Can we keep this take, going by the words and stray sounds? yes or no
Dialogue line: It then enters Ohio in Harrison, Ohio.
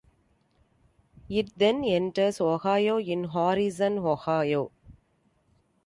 yes